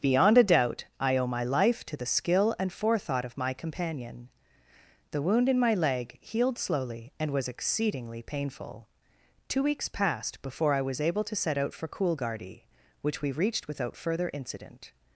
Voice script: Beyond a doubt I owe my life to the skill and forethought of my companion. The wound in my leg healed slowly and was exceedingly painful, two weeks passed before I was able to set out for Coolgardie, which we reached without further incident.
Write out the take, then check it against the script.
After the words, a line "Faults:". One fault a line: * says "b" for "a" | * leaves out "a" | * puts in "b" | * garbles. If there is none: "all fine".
Beyond a doubt I owe my life to the skill and forethought of my companion. The wound in my leg healed slowly and was exceedingly painful, two weeks passed before I was able to set out for Coolgardie, which we reached without further incident.
Faults:
all fine